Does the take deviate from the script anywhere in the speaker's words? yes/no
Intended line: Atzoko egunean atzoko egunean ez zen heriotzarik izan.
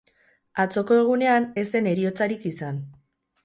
yes